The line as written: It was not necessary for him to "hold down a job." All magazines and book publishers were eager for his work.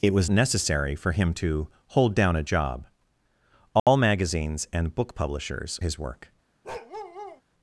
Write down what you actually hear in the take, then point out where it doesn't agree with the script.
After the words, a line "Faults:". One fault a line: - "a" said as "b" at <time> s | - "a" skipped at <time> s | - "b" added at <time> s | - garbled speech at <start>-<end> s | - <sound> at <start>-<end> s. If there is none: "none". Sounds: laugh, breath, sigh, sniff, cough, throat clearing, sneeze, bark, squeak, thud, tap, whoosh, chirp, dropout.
It was necessary for him to "hold down a job." All magazines and book publishers his work.
Faults:
- "not" skipped at 0.3 s
- dropout at 3.8-3.9 s
- "were eager for" skipped at 5.8 s
- bark at 6.6-7.4 s